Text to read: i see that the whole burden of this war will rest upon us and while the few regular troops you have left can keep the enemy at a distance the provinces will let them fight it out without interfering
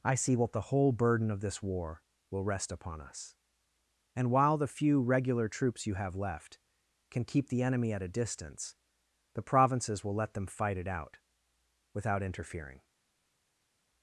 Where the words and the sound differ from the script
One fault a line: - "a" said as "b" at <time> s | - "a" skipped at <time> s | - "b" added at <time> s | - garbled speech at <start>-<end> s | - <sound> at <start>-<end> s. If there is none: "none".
- "that" said as "what" at 0.3 s